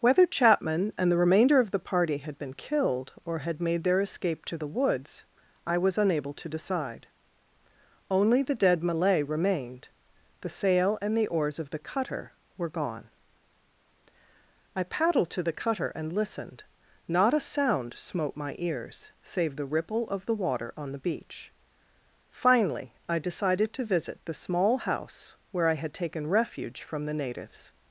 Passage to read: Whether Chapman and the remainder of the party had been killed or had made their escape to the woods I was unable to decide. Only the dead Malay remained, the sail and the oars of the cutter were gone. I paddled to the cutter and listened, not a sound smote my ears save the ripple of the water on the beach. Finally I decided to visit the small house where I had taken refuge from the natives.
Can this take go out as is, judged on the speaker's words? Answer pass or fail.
pass